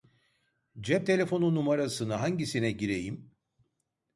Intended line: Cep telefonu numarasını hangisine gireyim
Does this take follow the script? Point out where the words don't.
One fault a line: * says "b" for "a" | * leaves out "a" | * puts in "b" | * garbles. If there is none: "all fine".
all fine